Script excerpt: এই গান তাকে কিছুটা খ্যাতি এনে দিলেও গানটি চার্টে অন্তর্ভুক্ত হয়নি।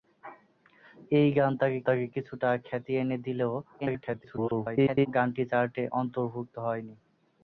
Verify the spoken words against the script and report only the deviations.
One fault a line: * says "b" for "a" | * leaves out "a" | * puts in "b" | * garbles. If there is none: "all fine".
* puts in "তাকে"
* garbles